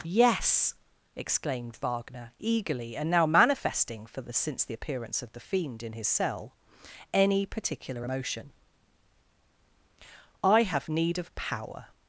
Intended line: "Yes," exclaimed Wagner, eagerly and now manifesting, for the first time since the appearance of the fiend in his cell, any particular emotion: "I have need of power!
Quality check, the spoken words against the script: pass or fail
fail